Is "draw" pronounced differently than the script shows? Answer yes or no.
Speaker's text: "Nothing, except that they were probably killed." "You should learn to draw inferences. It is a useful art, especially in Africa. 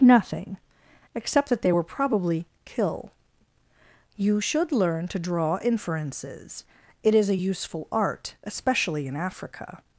no